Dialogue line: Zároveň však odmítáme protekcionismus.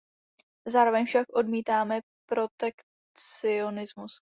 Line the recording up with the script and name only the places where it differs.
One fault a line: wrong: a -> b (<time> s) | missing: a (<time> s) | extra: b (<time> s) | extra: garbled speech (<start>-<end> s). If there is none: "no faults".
no faults